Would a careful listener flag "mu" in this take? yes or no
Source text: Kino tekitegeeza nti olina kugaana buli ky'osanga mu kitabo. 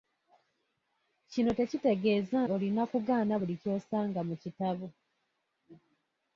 no